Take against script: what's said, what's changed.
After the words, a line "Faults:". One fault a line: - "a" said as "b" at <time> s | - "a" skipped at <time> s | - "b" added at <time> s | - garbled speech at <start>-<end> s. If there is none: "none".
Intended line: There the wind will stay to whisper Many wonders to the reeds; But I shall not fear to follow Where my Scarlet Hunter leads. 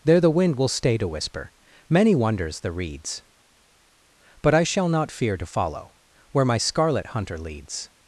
There the wind will stay to whisper Many wonders the reeds; But I shall not fear to follow Where my Scarlet Hunter leads.
Faults:
- "to" skipped at 2.6 s